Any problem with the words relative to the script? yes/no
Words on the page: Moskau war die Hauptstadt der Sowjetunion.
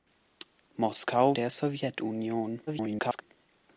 yes